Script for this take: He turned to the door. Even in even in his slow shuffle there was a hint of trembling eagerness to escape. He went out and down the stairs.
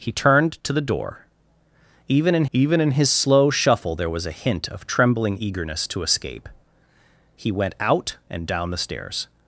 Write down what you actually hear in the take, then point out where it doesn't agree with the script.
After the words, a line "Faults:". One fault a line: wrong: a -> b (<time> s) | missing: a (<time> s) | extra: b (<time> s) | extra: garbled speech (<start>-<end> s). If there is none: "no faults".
He turned to the door. Even in even in his slow shuffle there was a hint of trembling eagerness to escape. He went out and down the stairs.
Faults:
no faults